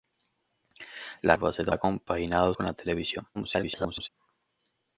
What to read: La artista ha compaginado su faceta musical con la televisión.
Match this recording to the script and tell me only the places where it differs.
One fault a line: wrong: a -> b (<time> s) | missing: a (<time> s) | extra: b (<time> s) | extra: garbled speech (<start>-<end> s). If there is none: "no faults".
wrong: artista -> faceta (1.4 s)
missing: su faceta musical (2.5 s)
extra: garbled speech (3.3-4.1 s)